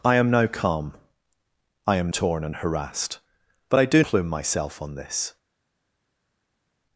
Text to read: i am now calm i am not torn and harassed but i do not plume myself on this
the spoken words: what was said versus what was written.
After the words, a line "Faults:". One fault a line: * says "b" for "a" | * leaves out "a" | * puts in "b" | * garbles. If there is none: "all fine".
i am now calm i am torn and harassed but i do plume myself on this
Faults:
* leaves out "not"
* leaves out "not"